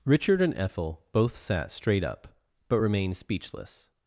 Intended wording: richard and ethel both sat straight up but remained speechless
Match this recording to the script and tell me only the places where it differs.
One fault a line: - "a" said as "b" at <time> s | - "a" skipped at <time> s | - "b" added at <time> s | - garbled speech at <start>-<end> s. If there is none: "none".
none